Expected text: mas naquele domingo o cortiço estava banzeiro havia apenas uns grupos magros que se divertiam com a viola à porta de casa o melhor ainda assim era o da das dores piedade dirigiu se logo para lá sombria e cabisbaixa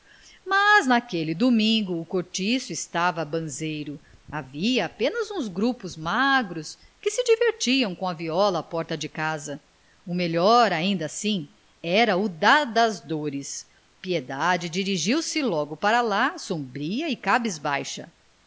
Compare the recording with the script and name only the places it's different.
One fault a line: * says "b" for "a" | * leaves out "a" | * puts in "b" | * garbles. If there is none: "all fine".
all fine